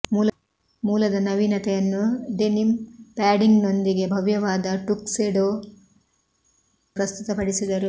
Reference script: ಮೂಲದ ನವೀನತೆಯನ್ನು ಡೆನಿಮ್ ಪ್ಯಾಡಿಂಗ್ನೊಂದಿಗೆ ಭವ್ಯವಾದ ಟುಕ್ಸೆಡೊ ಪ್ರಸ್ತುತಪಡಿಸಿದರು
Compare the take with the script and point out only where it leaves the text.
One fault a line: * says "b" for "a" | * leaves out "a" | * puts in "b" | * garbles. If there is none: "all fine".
all fine